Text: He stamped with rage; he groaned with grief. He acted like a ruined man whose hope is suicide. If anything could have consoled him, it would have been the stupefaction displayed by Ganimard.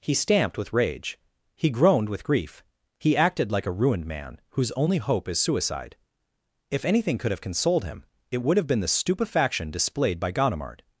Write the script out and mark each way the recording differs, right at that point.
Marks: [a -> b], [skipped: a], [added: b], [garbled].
He stamped with rage; he groaned with grief. He acted like a ruined man whose [added: only] hope is suicide. If anything could have consoled him, it would have been the stupefaction displayed by Ganimard.